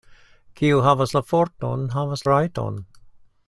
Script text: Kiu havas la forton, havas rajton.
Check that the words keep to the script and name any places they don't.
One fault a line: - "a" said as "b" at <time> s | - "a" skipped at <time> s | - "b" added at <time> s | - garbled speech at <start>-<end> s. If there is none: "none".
none